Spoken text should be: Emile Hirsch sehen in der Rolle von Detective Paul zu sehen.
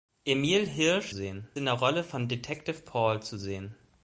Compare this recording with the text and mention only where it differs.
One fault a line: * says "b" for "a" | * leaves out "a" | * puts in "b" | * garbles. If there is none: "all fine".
all fine